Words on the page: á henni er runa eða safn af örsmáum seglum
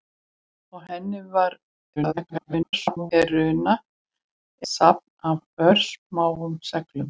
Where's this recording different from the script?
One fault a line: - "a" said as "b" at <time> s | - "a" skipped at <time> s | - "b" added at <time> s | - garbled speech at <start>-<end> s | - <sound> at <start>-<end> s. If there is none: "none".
- garbled speech at 2.0-3.1 s
- "eða" skipped at 3.7 s